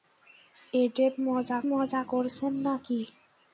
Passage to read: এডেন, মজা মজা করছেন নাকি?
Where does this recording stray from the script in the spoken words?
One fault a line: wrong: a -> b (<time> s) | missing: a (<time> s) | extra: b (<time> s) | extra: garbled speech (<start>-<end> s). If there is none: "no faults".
no faults